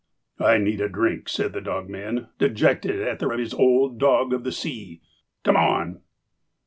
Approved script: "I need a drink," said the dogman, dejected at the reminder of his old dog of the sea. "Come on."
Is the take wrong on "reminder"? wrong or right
wrong